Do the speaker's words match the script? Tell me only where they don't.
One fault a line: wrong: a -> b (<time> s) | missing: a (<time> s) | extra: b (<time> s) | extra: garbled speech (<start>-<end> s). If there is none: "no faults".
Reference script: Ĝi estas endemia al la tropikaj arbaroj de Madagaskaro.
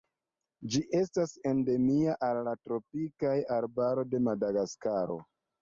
no faults